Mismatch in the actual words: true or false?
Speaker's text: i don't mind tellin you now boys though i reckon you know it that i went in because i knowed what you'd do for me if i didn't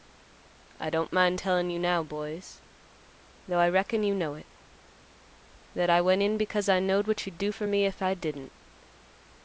false